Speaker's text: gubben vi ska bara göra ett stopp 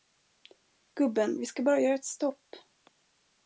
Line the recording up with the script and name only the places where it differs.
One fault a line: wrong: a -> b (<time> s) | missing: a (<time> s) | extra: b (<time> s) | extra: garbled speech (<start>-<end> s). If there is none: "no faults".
no faults